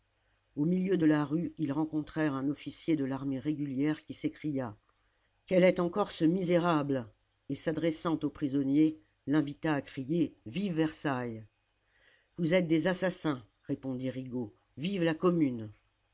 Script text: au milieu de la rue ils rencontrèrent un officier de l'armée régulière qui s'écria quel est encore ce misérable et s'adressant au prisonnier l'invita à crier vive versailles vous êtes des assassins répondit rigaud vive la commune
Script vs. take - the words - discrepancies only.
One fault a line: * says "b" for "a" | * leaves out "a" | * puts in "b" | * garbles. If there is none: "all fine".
all fine